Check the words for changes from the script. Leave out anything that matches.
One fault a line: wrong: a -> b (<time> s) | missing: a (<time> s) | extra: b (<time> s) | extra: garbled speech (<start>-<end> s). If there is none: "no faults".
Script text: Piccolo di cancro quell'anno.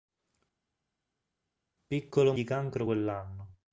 no faults